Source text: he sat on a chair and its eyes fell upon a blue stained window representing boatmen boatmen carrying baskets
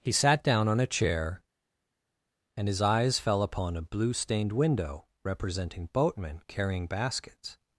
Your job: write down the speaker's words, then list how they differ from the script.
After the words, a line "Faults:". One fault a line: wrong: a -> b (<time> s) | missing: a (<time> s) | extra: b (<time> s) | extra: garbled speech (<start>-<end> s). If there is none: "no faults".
he sat down on a chair and his eyes fell upon a blue stained window representing boatmen carrying baskets
Faults:
extra: down (0.4 s)
wrong: its -> his (2.7 s)
missing: boatmen (6.4 s)